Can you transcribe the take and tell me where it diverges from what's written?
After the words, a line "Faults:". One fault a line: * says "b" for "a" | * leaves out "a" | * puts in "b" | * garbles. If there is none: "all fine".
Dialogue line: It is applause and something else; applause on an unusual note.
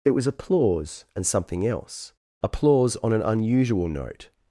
It was applause and something else; applause on an unusual note.
Faults:
* says "was" for "is"